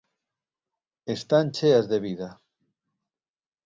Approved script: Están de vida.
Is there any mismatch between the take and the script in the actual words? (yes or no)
yes